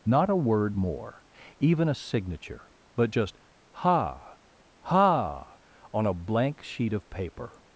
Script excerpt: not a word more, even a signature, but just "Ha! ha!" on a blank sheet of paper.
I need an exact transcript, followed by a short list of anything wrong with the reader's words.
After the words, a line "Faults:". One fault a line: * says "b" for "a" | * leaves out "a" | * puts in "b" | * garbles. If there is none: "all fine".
not a word more, even a signature, but just "Ha! ha!" on a blank sheet of paper.
Faults:
all fine